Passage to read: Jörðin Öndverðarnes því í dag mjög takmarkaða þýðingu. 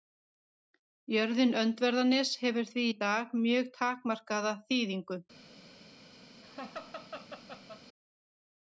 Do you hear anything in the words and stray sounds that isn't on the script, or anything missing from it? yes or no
yes